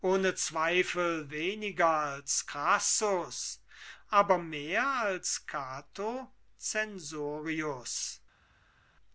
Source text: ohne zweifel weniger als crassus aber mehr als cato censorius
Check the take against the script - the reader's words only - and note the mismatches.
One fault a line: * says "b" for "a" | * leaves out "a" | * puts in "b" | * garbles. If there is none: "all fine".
all fine